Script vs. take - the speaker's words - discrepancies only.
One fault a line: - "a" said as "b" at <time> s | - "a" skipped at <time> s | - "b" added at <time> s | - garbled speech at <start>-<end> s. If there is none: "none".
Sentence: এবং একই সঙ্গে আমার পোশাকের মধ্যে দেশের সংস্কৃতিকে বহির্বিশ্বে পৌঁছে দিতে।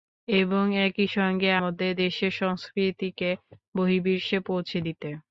- "আমার পোশাকের" skipped at 1.5 s